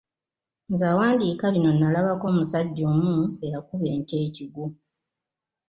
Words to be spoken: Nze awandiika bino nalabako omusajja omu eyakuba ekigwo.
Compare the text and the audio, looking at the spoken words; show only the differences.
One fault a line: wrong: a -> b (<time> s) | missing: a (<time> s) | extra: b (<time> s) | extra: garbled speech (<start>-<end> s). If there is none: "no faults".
extra: ente (3.9 s)